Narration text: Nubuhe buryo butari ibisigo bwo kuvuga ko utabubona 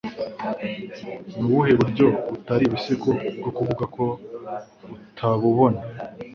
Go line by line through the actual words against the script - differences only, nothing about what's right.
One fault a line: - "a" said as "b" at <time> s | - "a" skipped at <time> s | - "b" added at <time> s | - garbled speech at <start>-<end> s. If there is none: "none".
none